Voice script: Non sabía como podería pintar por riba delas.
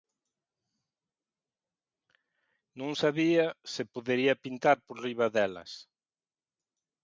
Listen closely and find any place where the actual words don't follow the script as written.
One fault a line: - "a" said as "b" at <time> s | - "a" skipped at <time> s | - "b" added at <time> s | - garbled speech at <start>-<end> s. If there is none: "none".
- "como" said as "se" at 3.7 s